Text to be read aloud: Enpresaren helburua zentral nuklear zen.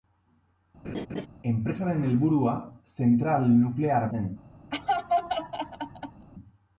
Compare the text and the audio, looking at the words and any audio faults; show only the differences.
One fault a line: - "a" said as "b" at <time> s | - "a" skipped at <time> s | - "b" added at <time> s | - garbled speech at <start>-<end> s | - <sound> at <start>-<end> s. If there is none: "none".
- laugh at 0.8-1.3 s
- laugh at 4.7-6.3 s